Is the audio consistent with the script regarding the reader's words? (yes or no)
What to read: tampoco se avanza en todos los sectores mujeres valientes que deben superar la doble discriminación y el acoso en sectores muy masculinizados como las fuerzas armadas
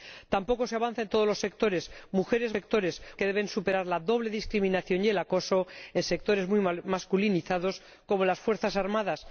no